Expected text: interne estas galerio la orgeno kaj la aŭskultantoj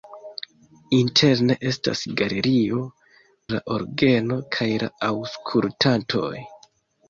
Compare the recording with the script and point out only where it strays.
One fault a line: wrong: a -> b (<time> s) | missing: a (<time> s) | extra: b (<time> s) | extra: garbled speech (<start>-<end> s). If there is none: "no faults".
no faults